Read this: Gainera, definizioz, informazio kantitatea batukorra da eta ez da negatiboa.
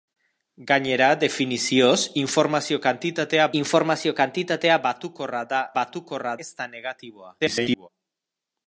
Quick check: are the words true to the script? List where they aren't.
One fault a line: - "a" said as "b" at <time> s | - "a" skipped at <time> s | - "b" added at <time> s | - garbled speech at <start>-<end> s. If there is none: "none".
- "informazio kantitatea" added at 3.6 s
- "eta" said as "batukorra" at 5.8 s
- garbled speech at 7.4-7.9 s